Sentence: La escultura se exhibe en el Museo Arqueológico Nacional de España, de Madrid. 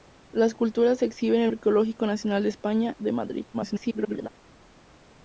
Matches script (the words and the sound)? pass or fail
fail